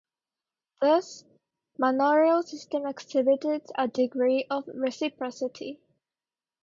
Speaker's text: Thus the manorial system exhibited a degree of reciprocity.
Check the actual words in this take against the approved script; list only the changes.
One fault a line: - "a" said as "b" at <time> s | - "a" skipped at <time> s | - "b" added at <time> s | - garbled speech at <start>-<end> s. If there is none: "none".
- "the" skipped at 1.2 s